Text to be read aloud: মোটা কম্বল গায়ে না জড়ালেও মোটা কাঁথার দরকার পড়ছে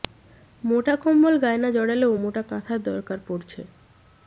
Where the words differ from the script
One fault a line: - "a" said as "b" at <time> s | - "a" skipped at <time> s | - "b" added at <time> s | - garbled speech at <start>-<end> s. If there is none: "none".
none